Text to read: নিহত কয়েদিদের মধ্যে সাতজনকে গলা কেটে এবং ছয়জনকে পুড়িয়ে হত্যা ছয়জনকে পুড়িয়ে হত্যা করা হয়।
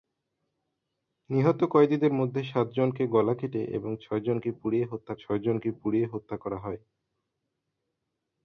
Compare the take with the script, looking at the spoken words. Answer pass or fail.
pass